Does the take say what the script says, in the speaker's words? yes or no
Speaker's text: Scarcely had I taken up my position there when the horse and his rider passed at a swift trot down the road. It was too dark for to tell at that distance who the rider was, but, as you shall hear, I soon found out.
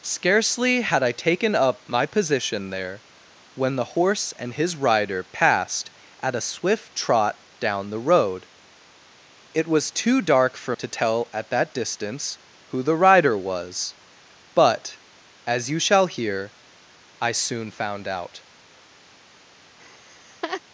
yes